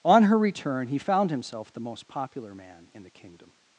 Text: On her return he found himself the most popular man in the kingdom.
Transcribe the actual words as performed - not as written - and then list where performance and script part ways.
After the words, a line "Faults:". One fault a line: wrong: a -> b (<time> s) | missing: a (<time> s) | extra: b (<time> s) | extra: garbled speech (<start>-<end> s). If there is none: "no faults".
On her return he found himself the most popular man in the kingdom.
Faults:
no faults